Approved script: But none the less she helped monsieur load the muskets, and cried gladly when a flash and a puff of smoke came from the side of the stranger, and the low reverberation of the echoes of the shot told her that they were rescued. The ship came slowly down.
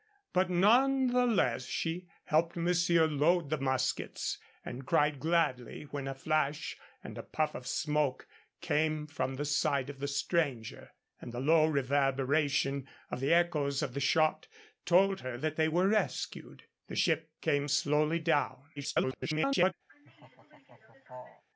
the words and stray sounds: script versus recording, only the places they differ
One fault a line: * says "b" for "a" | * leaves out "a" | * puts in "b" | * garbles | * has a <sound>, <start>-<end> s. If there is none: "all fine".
* garbles
* has a laugh, 19.9-21.4 s